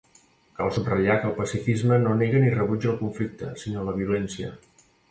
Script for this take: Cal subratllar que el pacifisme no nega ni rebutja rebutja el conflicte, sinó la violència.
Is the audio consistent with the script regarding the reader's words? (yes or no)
no